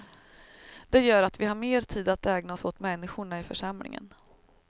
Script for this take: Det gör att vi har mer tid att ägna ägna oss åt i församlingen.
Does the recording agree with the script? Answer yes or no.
no